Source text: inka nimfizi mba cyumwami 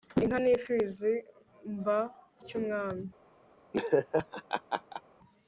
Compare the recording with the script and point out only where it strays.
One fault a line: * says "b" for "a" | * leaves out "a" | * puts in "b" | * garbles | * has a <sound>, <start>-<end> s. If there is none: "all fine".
* has a laugh, 3.7-5.0 s